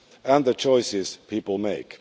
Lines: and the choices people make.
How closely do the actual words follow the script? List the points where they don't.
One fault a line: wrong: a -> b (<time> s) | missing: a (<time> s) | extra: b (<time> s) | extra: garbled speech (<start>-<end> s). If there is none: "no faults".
no faults